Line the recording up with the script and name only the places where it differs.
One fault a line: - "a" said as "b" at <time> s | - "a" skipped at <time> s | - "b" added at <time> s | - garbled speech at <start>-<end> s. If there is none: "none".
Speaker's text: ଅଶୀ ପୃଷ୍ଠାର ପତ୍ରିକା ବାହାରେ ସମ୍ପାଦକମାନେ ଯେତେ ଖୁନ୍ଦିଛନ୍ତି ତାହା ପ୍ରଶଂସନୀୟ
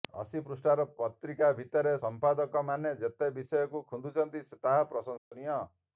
- "ବାହାରେ" said as "ଭିତରେ" at 1.6 s
- "ବିଷୟକୁ" added at 3.4 s